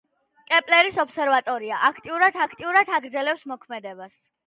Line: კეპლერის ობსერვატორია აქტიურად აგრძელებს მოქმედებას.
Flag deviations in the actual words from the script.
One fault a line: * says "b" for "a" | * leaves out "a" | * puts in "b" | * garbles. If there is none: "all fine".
* puts in "აქტიურად"